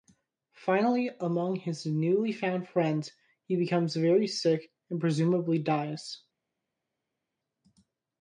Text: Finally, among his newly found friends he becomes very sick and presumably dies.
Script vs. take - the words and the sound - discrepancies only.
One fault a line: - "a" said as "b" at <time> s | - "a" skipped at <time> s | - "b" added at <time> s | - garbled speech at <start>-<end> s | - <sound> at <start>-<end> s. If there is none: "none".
none